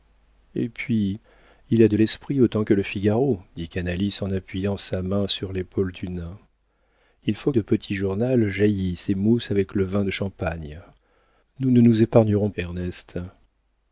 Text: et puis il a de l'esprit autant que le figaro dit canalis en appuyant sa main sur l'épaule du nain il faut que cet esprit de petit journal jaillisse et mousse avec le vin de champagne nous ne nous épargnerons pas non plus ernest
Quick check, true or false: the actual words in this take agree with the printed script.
false